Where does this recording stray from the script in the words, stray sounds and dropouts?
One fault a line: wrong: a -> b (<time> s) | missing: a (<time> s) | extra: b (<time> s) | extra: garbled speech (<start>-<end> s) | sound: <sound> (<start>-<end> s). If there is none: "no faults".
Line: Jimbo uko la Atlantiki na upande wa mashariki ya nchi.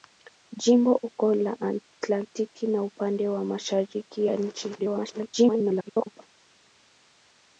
extra: garbled speech (4.8-6.2 s)